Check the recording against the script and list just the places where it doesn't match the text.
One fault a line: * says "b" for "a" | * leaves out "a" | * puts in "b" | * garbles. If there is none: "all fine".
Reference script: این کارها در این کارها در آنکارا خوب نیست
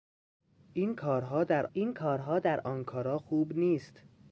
all fine